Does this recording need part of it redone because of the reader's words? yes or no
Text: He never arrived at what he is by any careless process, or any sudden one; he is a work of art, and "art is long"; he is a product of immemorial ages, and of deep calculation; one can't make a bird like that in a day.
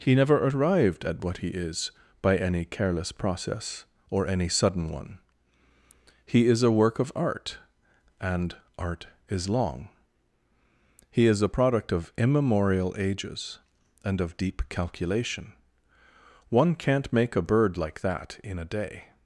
no